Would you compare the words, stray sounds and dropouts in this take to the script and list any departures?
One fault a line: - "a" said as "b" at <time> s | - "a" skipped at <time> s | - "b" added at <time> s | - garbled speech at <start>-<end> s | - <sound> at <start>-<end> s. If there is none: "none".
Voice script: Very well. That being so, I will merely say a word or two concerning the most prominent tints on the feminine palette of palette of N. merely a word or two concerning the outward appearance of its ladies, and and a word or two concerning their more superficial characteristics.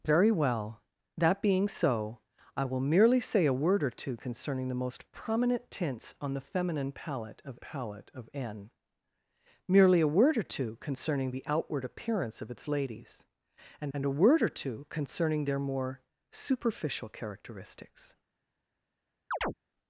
- chirp at 19.3-19.5 s